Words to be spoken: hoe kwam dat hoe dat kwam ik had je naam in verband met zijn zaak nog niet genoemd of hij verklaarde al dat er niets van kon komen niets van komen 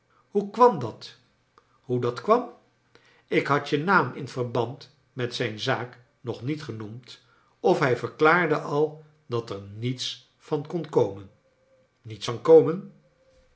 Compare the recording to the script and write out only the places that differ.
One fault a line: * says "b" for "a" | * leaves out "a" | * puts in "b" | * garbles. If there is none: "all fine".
all fine